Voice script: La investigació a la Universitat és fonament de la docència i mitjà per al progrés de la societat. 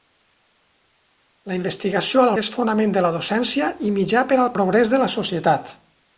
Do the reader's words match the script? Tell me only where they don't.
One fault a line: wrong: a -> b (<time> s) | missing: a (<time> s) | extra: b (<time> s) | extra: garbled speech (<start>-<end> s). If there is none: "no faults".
missing: Universitat (2.3 s)